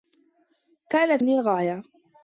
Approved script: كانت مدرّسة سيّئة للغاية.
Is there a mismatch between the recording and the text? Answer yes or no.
yes